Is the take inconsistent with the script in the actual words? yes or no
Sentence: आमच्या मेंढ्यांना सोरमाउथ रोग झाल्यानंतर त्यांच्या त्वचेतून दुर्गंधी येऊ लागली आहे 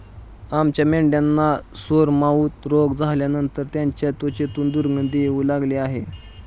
no